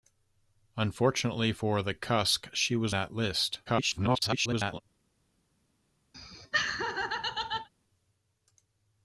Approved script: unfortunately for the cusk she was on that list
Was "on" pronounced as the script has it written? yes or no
no